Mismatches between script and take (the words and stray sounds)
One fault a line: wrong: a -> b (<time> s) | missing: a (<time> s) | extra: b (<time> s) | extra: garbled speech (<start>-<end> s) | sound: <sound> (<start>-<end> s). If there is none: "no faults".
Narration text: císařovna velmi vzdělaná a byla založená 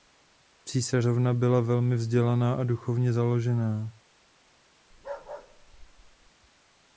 extra: byla (1.3 s)
wrong: byla -> duchovně (2.6 s)
sound: bark (4.9-6.3 s)